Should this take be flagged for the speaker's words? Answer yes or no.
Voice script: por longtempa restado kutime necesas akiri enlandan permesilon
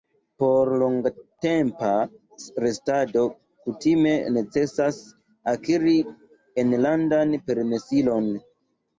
no